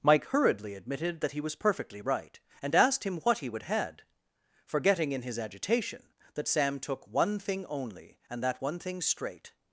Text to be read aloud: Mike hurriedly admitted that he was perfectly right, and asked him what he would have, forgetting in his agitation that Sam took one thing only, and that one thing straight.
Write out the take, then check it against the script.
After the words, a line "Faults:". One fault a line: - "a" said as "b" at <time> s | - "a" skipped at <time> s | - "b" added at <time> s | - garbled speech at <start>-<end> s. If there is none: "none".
Mike hurriedly admitted that he was perfectly right, and asked him what he would had, forgetting in his agitation that Sam took one thing only, and that one thing straight.
Faults:
- "have" said as "had" at 3.6 s